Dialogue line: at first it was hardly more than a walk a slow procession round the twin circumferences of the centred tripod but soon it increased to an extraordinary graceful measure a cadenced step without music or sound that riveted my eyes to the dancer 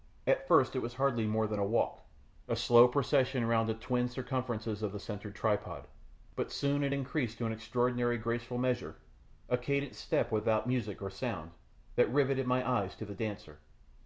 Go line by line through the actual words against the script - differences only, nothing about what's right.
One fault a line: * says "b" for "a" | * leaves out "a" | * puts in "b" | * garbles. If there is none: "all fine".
all fine